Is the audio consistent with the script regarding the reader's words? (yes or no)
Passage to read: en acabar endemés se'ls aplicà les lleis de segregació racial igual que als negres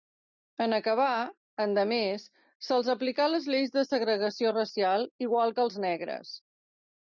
yes